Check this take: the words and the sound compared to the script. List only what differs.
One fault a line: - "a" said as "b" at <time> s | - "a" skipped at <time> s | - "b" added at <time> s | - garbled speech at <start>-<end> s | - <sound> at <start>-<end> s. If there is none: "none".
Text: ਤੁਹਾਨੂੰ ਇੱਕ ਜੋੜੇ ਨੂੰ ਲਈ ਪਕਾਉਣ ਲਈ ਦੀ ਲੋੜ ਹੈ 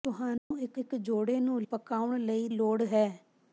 - dropout at 0.4-0.5 s
- "ਇੱਕ" added at 0.8 s
- "ਲਈ" skipped at 1.6 s
- "ਦੀ" skipped at 2.5 s